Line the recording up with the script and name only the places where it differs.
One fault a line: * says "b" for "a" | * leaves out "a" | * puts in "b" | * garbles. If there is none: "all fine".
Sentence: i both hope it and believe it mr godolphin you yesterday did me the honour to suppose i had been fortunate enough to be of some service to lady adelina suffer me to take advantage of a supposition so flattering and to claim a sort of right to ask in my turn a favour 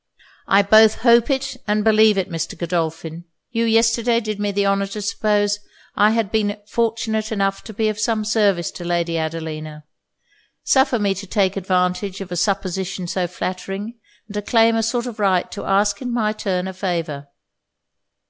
all fine